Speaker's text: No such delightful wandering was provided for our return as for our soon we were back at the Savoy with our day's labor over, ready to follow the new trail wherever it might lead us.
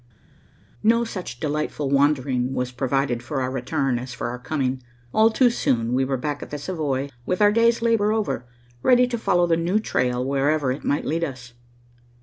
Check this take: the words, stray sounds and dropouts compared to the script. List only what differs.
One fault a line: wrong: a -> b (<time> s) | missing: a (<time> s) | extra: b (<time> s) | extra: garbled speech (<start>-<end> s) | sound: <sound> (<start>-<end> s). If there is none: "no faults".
extra: coming All too (4.4 s)